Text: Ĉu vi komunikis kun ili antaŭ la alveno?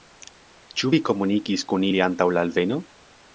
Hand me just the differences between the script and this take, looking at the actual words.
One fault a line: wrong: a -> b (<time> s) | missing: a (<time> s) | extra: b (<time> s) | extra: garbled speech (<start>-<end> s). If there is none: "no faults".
no faults